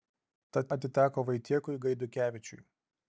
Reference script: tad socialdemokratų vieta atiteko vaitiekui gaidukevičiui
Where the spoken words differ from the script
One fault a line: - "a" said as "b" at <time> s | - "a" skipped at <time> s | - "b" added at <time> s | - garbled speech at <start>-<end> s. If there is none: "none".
- "socialdemokratų vieta" skipped at 0.7 s